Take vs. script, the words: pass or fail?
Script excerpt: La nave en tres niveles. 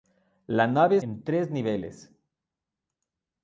pass